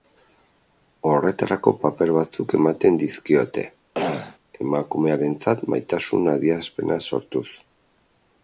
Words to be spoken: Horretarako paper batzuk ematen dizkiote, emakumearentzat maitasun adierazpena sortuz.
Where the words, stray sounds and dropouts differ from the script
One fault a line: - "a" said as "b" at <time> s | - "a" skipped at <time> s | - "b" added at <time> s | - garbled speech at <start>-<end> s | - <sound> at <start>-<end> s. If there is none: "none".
- throat clearing at 3.9-4.4 s